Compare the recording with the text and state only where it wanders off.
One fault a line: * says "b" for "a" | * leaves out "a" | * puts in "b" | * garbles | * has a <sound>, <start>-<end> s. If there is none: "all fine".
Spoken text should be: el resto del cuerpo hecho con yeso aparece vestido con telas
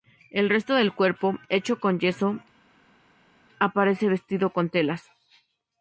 all fine